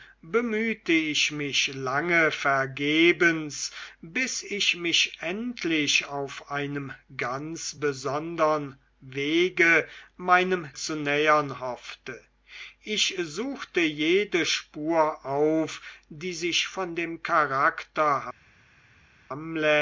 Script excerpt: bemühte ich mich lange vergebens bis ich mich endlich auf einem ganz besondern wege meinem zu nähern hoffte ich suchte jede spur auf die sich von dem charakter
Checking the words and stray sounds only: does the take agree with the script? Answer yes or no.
yes